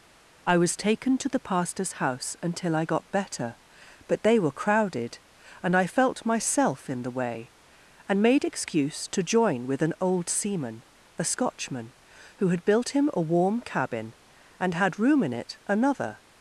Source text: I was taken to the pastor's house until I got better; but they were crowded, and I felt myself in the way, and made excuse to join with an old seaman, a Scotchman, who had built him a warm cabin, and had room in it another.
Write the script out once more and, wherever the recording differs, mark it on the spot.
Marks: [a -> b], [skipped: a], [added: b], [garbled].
I was taken to the pastor's house until I got better; but they were crowded, and I felt myself in the way, and made excuse to join with an old seaman, a Scotchman, who had built him a warm cabin, and had room in it another.